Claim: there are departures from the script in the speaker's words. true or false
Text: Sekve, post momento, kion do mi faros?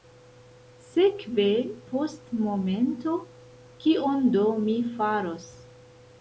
false